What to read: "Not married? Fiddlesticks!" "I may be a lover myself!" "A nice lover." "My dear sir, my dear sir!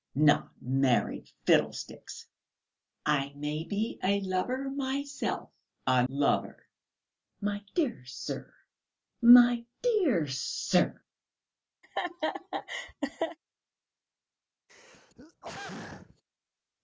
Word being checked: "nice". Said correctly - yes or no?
no